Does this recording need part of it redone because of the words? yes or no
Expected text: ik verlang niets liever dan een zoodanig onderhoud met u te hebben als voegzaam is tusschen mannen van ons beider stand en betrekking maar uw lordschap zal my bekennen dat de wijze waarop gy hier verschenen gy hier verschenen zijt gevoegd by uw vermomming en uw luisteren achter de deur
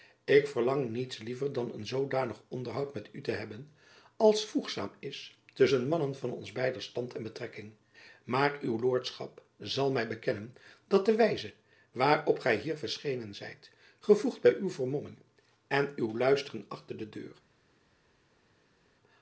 yes